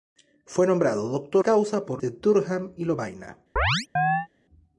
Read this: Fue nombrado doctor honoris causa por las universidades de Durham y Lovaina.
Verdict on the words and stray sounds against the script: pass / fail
fail